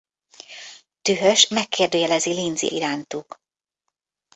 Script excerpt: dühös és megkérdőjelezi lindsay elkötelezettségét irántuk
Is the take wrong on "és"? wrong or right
wrong